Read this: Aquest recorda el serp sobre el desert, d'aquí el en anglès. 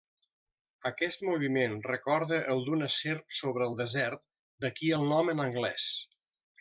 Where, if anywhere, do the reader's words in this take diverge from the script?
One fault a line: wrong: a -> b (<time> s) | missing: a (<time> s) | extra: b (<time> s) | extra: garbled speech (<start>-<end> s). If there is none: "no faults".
extra: moviment (1.3 s)
extra: d'una (2.7 s)
extra: nom (5.1 s)